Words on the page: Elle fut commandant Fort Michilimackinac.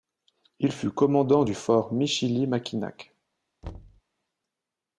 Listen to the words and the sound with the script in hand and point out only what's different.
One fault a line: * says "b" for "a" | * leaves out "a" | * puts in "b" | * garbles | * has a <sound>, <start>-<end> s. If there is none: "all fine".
* says "Il" for "Elle"
* puts in "du"
* has a thud, 3.6-4.0 s